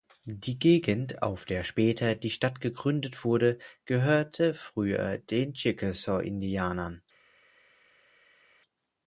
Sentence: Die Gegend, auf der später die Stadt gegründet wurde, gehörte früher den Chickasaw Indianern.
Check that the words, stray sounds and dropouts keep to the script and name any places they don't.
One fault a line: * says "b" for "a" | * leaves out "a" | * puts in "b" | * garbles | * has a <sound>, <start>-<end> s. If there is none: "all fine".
all fine